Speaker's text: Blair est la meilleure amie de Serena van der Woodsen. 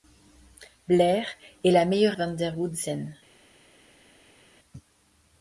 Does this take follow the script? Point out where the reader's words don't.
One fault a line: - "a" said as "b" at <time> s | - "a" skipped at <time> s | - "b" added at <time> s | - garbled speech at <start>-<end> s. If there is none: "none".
- "amie de Serena" skipped at 2.2 s